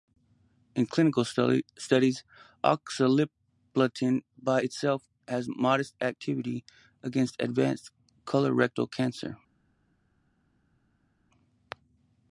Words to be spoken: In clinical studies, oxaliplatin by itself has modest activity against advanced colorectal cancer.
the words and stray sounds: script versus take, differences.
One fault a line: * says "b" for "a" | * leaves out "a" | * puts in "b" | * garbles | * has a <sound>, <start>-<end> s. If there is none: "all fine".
all fine